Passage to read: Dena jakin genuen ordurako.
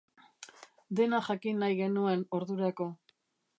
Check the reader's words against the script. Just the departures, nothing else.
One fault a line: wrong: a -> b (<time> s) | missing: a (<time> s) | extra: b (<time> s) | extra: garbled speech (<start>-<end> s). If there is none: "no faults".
extra: nahi (1.6 s)